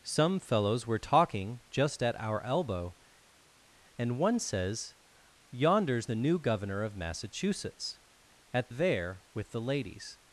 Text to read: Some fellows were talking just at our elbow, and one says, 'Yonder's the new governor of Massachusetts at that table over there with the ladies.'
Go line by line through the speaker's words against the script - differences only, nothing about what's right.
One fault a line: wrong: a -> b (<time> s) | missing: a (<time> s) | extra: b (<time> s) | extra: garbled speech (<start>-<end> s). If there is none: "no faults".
missing: that table over (8.7 s)